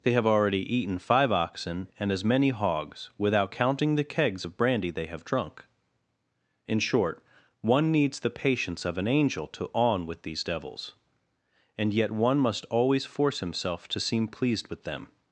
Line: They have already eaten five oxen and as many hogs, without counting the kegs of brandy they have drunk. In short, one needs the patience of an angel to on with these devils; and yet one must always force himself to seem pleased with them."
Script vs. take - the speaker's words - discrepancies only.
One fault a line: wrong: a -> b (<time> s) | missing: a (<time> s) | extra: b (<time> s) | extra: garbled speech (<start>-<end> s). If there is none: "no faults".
no faults